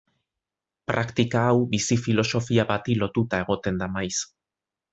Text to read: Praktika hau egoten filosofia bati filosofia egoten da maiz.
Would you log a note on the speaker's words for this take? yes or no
yes